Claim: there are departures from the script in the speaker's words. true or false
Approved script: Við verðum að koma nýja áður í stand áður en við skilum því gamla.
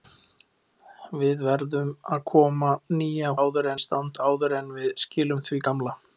false